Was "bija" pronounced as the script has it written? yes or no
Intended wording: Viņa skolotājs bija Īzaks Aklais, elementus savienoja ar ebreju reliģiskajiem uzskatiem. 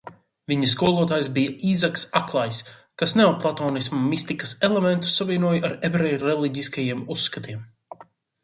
yes